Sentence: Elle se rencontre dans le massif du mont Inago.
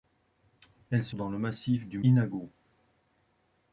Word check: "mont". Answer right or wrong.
wrong